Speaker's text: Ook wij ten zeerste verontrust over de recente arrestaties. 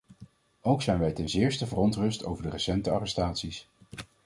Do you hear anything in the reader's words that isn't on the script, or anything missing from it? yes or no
yes